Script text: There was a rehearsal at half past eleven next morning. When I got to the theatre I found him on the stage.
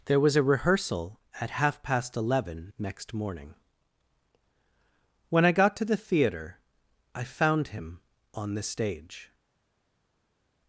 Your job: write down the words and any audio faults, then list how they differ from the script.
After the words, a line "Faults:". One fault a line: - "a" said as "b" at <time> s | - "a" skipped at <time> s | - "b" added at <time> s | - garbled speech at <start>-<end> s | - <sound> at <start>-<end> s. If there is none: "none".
There was a rehearsal at half past eleven next morning. When I got to the theatre I found him on the stage.
Faults:
none